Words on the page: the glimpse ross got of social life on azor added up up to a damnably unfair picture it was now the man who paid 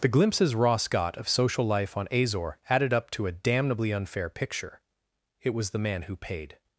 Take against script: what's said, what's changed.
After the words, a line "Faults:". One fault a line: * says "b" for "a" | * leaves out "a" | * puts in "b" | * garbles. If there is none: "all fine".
the glimpses ross got of social life on azor added up to a damnably unfair picture it was the man who paid
Faults:
* says "glimpses" for "glimpse"
* leaves out "up"
* leaves out "now"